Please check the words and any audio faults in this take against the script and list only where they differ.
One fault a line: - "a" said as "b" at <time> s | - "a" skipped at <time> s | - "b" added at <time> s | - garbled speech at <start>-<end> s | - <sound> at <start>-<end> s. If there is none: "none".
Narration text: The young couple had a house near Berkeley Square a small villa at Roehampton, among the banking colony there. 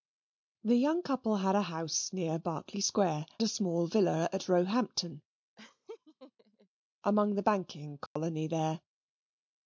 - laugh at 5.6-6.7 s
- dropout at 8.1-8.2 s